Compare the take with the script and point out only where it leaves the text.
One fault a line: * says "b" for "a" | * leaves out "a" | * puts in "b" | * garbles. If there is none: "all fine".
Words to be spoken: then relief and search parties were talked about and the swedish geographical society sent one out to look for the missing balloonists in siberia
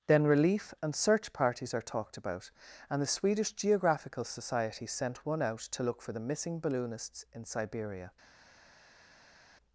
* says "are" for "were"